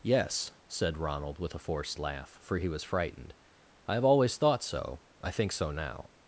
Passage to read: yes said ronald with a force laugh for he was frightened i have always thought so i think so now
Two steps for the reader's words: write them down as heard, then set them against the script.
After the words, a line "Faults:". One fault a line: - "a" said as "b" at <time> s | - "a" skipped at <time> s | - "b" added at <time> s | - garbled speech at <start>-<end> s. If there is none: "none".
yes said ronald with a forced laugh for he was frightened i have always thought so i think so now
Faults:
- "force" said as "forced" at 1.6 s